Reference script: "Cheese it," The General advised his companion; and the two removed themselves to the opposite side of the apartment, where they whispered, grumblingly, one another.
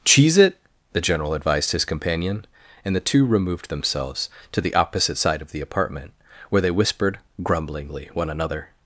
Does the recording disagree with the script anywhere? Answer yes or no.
no